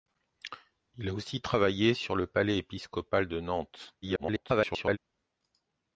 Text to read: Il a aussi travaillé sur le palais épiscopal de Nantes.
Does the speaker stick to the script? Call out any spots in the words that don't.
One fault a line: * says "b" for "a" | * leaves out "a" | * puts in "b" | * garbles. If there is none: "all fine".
* garbles